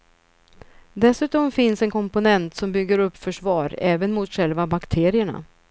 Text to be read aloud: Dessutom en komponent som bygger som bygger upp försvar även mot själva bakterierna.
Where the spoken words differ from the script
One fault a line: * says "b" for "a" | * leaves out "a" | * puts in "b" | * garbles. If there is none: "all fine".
* puts in "finns"
* leaves out "som bygger"